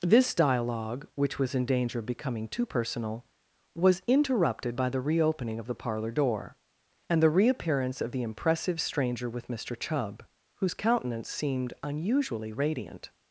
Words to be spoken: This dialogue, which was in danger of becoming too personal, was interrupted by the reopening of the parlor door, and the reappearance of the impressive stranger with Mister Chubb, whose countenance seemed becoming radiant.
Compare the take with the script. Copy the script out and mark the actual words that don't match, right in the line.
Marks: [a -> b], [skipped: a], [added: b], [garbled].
This dialogue, which was in danger of becoming too personal, was interrupted by the reopening of the parlor door, and the reappearance of the impressive stranger with Mister Chubb, whose countenance seemed [becoming -> unusually] radiant.